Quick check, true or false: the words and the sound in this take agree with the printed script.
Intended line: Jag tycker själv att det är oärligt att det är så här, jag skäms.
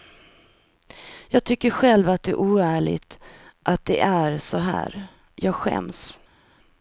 true